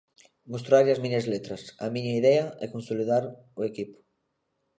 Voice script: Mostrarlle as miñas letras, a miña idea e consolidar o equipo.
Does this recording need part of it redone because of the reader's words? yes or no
no